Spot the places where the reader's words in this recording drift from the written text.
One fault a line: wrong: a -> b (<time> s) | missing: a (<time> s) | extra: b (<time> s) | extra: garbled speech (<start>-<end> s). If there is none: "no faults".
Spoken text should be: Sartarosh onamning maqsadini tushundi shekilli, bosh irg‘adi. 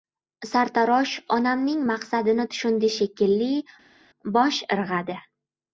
no faults